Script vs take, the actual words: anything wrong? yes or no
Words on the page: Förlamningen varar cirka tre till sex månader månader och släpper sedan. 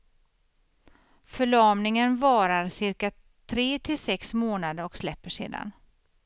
yes